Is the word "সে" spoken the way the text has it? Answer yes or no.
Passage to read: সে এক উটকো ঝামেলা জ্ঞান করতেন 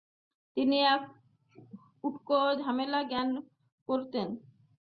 no